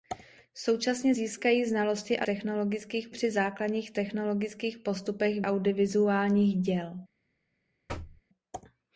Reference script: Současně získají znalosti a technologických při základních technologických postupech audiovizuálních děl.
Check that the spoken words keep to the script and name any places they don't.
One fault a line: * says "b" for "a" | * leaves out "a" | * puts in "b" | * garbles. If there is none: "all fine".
all fine